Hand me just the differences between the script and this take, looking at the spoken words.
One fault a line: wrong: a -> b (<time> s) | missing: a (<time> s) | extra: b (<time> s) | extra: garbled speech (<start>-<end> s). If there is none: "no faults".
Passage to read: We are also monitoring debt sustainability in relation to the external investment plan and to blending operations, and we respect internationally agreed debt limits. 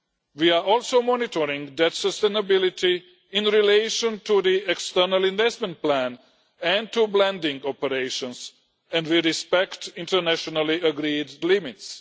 missing: debt (11.4 s)